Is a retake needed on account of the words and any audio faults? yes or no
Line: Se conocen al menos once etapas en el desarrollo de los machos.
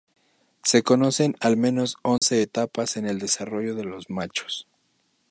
yes